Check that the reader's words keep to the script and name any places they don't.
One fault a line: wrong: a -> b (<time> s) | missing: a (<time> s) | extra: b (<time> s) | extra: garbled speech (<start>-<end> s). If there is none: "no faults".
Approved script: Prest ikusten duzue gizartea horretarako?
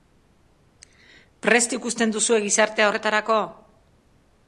no faults